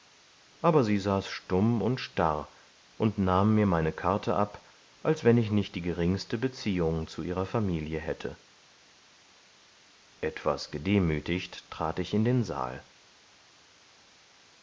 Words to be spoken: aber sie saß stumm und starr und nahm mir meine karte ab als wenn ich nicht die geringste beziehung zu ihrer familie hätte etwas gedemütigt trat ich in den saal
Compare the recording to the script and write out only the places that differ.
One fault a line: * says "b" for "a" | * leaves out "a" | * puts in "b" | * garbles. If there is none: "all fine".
all fine